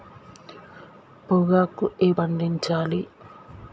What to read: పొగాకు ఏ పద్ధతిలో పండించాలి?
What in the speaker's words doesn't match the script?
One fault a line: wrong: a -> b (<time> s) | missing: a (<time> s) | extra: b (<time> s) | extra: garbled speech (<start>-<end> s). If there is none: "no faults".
missing: పద్ధతిలో (2.1 s)